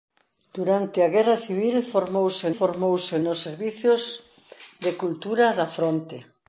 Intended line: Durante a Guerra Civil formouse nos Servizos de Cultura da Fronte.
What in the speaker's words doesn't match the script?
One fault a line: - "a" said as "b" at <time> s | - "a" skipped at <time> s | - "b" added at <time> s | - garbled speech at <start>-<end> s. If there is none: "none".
- "formouse" added at 2.6 s